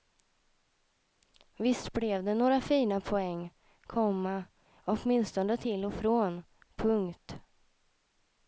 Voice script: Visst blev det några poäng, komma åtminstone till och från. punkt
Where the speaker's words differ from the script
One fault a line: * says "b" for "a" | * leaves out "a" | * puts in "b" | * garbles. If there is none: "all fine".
* puts in "fina"